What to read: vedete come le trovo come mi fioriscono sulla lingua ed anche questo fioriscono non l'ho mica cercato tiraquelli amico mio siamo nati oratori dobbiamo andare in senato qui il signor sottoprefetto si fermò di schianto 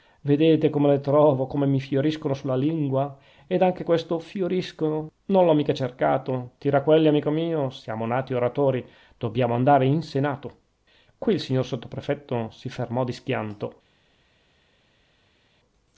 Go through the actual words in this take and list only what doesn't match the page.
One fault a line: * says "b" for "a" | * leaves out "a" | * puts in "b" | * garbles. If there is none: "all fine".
all fine